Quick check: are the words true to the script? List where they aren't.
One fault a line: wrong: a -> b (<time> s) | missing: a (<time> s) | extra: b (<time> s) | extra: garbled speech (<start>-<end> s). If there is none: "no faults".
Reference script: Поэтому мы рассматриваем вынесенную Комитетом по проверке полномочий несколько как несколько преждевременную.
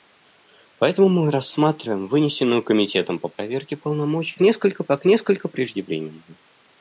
no faults